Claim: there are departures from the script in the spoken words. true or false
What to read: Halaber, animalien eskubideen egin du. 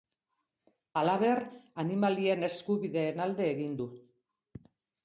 true